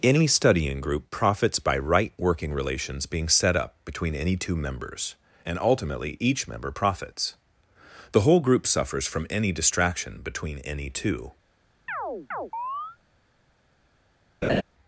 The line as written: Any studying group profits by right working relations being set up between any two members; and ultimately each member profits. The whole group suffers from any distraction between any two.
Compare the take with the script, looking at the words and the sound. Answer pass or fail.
fail